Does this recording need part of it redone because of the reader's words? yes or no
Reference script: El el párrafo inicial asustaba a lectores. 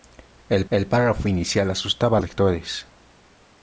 no